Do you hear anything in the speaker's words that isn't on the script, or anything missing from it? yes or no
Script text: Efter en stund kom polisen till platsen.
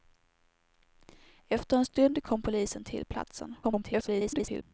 yes